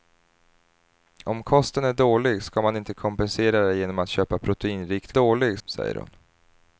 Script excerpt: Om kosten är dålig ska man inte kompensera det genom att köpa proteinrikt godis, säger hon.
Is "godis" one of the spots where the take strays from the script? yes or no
yes